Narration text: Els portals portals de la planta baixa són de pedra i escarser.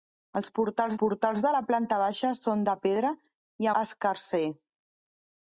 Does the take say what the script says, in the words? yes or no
yes